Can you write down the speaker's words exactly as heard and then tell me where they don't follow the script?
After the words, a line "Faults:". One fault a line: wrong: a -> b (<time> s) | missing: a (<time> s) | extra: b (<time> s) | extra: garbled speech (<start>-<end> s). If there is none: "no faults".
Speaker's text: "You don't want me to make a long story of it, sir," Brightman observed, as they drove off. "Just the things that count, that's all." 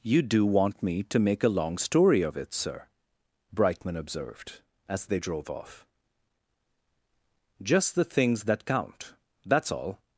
"You do want me to make a long story of it, sir," Brightman observed, as they drove off. "Just the things that count, that's all."
Faults:
wrong: don't -> do (0.2 s)